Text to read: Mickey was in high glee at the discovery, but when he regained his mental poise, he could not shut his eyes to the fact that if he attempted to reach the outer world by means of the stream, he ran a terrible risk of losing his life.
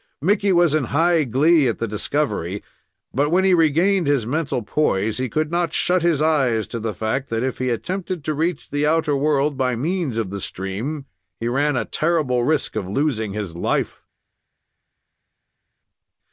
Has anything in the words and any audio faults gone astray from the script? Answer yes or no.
no